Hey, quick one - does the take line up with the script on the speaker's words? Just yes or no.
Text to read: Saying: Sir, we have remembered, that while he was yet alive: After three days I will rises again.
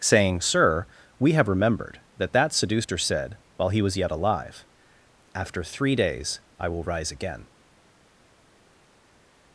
no